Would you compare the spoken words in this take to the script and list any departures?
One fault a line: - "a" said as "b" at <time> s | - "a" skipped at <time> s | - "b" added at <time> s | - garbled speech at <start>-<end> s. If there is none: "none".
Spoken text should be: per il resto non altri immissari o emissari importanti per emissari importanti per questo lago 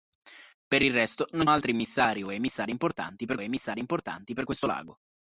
none